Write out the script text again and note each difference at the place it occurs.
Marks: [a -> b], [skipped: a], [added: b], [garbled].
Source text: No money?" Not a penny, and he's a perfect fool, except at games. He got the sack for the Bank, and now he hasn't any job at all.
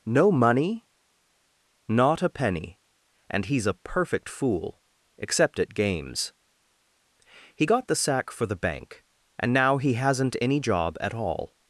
No money?" Not a penny, and he's a perfect fool, except at games. He got the sack for the Bank, and now he hasn't any job at all.